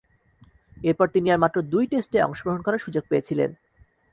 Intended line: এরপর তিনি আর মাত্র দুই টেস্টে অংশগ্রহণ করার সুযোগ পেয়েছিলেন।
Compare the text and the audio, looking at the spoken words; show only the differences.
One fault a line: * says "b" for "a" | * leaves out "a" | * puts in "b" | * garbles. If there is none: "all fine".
all fine